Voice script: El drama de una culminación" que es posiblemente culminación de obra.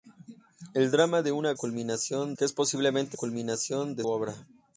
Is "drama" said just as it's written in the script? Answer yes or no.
yes